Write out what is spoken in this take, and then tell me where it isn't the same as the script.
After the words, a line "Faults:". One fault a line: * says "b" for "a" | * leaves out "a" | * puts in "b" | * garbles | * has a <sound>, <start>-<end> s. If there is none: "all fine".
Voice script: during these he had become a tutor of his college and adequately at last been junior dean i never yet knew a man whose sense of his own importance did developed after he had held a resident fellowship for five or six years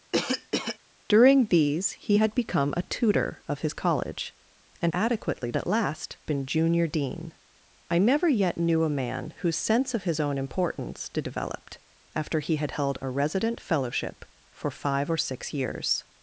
during these he had become a tutor of his college and adequately at last been junior dean i never yet knew a man whose sense of his own importance did developed after he had held a resident fellowship for five or six years
Faults:
* has a cough, 0.1-0.8 s